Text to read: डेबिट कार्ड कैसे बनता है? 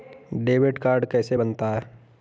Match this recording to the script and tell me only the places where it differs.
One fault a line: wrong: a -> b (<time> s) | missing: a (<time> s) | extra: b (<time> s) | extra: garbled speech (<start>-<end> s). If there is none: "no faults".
no faults